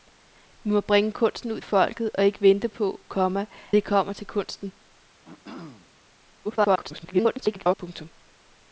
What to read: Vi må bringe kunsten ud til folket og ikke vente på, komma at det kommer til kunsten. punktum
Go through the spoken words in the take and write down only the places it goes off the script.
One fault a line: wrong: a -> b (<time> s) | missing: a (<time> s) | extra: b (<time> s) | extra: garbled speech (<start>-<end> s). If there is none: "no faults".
missing: til (1.6 s)
missing: at (3.5 s)
extra: garbled speech (6.4-7.8 s)